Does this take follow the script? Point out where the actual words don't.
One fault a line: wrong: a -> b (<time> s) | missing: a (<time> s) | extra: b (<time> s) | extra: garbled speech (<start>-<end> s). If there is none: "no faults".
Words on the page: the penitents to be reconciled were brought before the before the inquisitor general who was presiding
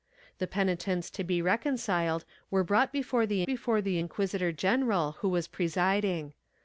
no faults